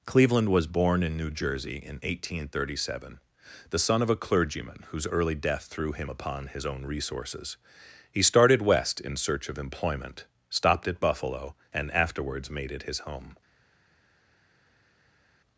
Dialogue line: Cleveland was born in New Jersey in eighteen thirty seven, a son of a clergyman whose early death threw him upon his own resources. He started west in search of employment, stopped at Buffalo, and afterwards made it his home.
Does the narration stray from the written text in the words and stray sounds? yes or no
yes